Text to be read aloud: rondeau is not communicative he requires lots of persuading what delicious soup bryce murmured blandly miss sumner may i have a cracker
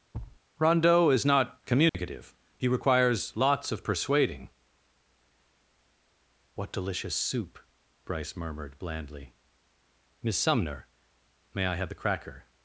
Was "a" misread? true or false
true